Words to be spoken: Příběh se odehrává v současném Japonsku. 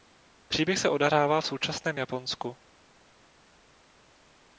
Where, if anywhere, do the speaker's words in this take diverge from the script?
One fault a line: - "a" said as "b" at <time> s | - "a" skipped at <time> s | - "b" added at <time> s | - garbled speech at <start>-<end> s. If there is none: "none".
none